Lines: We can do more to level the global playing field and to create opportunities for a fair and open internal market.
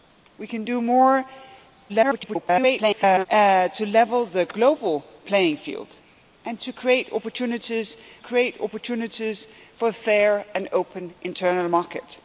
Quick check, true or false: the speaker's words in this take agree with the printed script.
false